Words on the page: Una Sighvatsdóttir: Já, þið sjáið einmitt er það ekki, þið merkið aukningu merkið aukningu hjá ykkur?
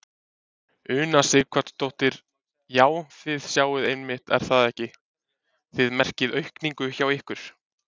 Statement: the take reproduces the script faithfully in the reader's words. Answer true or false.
false